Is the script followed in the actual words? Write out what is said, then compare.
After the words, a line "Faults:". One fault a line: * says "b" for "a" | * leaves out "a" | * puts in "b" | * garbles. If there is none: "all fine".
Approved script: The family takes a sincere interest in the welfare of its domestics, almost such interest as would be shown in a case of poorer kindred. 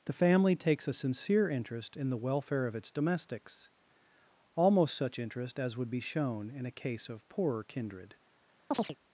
The family takes a sincere interest in the welfare of its domestics, almost such interest as would be shown in a case of poorer kindred.
Faults:
all fine